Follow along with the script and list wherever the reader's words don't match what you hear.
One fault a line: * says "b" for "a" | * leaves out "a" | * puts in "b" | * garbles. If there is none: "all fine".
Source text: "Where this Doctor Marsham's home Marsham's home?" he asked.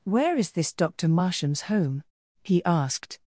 * puts in "is"
* leaves out "Marsham's home"